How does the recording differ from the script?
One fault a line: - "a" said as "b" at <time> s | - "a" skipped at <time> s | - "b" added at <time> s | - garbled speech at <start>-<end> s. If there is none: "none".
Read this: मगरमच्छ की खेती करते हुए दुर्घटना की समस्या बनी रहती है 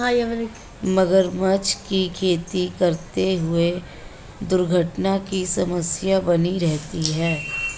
none